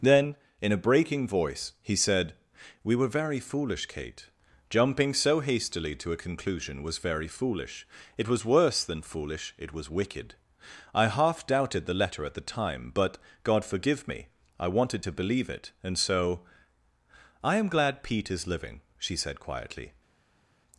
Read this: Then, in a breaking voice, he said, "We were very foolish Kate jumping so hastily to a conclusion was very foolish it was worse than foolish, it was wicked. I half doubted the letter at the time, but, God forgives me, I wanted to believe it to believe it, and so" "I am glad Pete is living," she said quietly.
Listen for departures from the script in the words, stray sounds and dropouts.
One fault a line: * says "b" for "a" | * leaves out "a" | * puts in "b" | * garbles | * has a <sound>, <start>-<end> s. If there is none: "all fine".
* says "forgive" for "forgives"
* leaves out "to believe it"